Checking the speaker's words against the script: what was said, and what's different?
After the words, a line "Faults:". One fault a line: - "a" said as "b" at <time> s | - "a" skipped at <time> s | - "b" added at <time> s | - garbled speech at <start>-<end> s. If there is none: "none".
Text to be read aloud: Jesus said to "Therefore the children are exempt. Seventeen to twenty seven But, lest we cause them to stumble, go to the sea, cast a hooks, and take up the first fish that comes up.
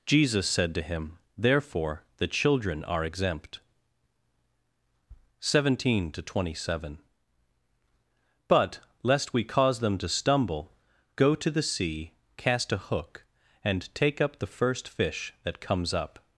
Jesus said to him, "Therefore the children are exempt. Seventeen to twenty seven But, lest we cause them to stumble, go to the sea, cast a hook, and take up the first fish that comes up.
Faults:
- "him" added at 0.8 s
- "hooks" said as "hook" at 12.8 s